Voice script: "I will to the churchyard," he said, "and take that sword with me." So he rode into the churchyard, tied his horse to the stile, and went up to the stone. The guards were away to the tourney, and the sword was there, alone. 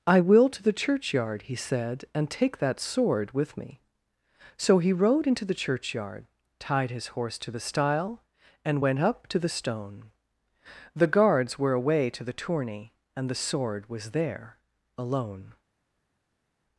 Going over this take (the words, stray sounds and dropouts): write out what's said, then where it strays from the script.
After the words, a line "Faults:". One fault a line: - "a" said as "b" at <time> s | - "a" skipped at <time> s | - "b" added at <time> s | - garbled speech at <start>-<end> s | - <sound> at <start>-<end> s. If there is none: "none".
"I will to the churchyard," he said, "and take that sword with me." So he rode into the churchyard, tied his horse to the stile, and went up to the stone. The guards were away to the tourney, and the sword was there, alone.
Faults:
none